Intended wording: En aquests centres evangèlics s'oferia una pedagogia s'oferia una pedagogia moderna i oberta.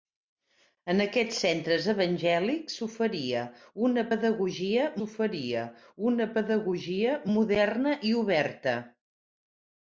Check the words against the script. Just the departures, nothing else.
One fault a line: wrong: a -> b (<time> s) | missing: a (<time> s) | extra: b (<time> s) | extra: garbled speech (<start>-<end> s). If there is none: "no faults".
no faults